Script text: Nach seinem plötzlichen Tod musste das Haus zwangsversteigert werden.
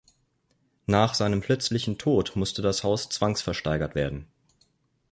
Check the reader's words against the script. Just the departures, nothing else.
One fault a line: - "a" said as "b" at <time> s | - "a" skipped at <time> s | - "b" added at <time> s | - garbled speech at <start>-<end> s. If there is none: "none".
none